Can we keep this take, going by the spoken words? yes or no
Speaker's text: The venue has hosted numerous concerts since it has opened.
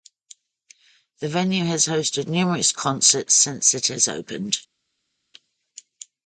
yes